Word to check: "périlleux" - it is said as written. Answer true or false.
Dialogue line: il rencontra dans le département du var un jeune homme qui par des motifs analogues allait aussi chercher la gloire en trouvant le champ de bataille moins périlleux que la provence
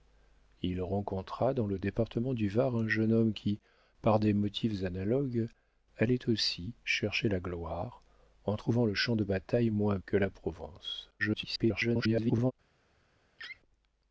false